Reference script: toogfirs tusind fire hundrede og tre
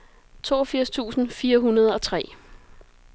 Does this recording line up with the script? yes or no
yes